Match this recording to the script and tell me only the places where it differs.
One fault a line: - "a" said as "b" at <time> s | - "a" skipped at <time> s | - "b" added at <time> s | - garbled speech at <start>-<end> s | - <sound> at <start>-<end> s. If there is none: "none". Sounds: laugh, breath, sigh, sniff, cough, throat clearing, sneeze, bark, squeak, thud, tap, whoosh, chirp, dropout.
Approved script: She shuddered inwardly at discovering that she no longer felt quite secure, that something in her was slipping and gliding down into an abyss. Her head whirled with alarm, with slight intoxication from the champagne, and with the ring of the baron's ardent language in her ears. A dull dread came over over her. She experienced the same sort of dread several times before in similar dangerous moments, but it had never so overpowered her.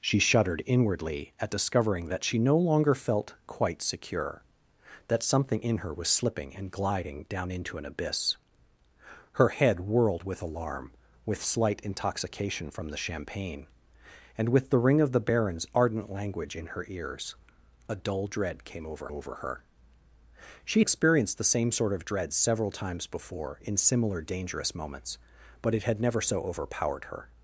none